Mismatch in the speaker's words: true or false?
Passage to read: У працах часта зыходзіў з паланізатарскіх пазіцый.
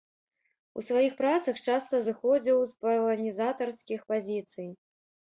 true